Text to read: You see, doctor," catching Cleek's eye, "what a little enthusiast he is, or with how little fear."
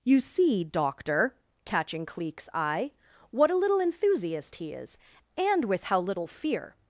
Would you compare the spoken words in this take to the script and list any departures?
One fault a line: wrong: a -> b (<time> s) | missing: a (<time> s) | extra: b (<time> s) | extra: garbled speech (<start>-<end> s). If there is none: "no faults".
wrong: or -> and (5.4 s)